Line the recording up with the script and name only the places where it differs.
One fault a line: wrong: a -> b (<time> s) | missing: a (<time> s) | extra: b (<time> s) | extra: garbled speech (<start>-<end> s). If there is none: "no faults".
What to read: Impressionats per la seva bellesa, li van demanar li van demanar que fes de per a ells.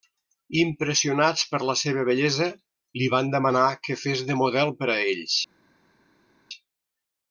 missing: li van demanar (3.7 s)
extra: model (4.4 s)